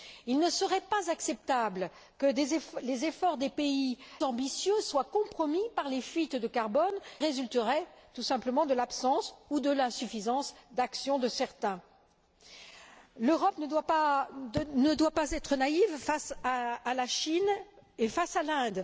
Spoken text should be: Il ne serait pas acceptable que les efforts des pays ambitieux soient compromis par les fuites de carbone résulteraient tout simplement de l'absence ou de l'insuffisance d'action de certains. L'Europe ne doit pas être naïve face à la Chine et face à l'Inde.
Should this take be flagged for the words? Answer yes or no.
no